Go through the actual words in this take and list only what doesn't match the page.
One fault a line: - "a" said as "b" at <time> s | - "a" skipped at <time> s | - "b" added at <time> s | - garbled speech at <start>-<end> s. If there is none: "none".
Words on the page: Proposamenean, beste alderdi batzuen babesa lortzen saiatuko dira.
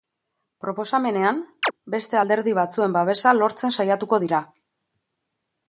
none